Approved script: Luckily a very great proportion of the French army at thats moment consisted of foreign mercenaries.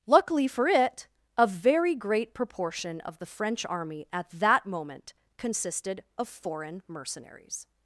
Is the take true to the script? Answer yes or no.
no